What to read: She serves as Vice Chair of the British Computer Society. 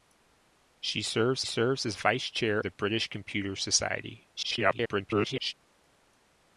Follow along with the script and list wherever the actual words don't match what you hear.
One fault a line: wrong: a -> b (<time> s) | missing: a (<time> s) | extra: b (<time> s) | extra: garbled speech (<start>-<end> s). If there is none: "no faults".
extra: serves (1.4 s)
missing: of (2.6 s)
extra: garbled speech (4.4-5.5 s)